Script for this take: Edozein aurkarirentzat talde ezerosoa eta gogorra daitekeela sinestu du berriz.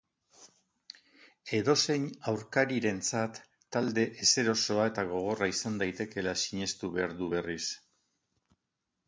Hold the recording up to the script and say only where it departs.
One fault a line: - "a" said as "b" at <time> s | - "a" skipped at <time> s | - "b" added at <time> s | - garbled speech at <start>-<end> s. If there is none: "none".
- "izan" added at 5.5 s
- "behar" added at 7.0 s